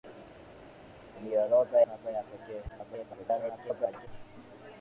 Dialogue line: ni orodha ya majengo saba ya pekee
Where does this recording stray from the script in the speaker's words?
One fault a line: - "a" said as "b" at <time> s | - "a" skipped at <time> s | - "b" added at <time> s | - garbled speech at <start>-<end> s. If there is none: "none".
- "ya majengo" skipped at 1.8 s
- garbled speech at 2.7-4.1 s